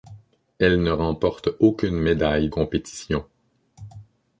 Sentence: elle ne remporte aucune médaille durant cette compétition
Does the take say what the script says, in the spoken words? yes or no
no